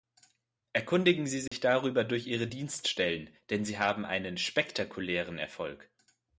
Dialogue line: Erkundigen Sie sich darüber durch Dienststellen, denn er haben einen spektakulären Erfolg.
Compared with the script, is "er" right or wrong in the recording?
wrong